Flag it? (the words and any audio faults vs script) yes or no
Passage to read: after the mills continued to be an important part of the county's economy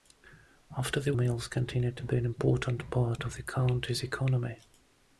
no